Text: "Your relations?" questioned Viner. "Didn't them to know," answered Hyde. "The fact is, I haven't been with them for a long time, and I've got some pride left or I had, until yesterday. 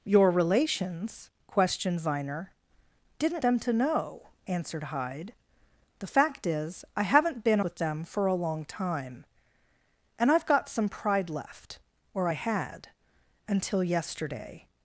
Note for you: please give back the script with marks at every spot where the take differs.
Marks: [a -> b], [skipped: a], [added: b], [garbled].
"Your relations?" questioned Viner. "Didn't them to know," answered Hyde. "The fact is, I haven't been with them for a long time, and I've got some pride left or I had, until yesterday.